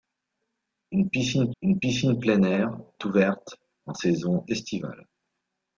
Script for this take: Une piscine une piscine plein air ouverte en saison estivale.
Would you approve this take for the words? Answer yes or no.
yes